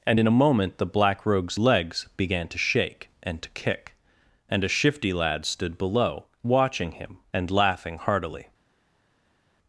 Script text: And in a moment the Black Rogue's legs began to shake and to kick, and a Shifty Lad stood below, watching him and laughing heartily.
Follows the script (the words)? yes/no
yes